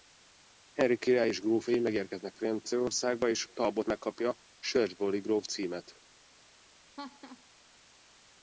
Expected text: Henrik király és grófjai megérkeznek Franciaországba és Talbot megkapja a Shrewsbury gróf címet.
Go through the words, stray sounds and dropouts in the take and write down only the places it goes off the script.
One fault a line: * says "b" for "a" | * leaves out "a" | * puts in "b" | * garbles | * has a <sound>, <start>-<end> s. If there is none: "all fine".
* has a laugh, 7.0-7.4 s